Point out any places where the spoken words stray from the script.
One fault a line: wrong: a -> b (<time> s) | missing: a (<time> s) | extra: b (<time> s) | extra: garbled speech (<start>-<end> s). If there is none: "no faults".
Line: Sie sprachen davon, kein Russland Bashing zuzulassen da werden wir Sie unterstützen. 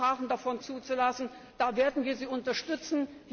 missing: kein Russland Bashing (0.6 s)